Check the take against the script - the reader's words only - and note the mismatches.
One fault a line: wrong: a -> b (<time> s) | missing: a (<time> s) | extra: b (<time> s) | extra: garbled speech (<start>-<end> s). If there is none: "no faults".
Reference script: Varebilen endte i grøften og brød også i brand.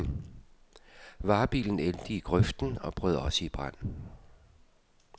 no faults